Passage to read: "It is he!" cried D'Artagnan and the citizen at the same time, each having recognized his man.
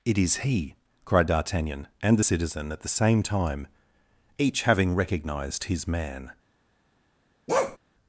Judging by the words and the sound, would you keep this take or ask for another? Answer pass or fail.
fail